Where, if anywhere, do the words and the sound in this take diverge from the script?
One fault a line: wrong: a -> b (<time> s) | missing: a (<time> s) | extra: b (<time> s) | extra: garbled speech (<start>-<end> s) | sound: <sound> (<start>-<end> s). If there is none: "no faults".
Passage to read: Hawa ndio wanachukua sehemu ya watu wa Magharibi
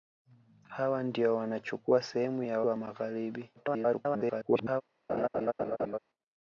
missing: watu (2.6 s)
extra: garbled speech (3.6-4.8 s)
sound: laugh (5.1-6.0 s)